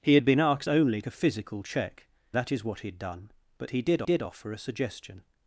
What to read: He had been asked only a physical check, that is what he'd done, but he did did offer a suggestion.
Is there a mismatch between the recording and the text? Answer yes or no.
no